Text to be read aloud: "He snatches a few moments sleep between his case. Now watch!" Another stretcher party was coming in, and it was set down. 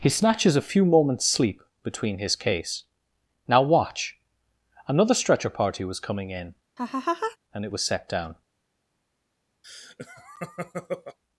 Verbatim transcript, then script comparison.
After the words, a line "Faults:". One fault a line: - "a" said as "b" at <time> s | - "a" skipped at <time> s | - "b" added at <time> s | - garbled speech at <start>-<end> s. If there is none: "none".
"He snatches a few moments sleep between his case. Now watch!" Another stretcher party was coming in, and it was set down.
Faults:
none